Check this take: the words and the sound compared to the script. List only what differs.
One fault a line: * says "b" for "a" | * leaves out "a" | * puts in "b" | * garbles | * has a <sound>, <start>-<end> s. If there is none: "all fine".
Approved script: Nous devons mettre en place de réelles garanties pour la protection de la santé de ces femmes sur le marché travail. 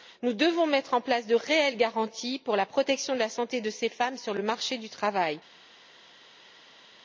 * puts in "du"